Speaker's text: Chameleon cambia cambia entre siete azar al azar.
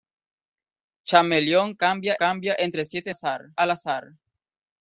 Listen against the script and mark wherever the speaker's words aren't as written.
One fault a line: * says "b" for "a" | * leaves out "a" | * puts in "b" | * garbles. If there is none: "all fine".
all fine